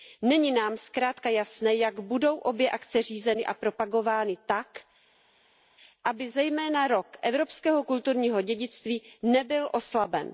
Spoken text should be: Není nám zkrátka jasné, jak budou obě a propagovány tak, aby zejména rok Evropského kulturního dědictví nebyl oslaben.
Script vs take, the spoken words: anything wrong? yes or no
yes